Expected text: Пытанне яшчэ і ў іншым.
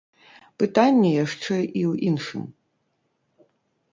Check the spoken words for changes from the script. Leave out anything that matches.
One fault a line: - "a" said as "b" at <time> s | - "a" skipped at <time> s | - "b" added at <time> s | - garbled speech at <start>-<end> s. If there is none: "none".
none